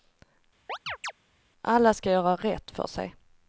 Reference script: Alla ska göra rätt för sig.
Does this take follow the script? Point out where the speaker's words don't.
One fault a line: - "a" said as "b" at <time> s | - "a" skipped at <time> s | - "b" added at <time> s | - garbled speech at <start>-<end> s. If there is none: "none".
none